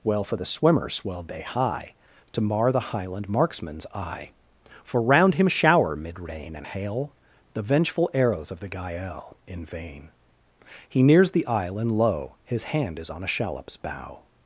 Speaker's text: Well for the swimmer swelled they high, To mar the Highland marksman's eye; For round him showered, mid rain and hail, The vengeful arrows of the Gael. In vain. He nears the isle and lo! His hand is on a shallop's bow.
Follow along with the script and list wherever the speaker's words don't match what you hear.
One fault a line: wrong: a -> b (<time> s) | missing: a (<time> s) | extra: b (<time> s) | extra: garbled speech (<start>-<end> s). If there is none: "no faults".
wrong: showered -> shower (5.5 s)